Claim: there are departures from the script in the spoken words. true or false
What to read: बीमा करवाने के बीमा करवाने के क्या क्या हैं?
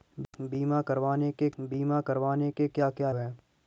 false